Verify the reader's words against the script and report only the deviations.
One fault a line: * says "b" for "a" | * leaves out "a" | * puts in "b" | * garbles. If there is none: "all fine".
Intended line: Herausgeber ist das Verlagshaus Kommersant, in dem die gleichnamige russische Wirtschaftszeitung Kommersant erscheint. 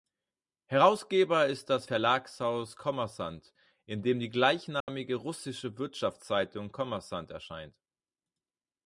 all fine